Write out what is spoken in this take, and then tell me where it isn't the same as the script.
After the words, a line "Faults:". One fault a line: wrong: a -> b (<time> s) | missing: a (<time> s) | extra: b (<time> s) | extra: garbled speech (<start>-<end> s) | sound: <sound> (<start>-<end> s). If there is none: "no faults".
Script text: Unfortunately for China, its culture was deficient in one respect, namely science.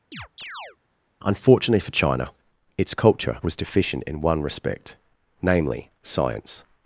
Unfortunately for China, its culture was deficient in one respect, namely science.
Faults:
sound: chirp (0.1-0.8 s)